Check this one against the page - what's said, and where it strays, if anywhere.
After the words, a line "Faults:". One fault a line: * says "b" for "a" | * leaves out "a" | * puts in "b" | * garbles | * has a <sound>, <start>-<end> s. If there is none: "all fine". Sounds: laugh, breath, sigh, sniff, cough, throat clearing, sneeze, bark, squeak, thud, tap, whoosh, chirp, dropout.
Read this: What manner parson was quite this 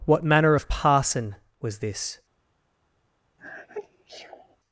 What manner of parson was this
Faults:
* puts in "of"
* leaves out "quite"
* has a sneeze, 3.4-4.6 s